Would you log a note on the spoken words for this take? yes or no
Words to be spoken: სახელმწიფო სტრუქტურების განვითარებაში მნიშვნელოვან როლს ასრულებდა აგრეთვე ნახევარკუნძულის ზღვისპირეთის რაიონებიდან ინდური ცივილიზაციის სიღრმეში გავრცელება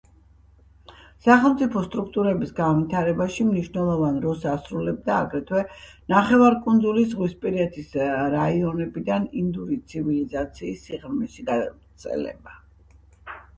no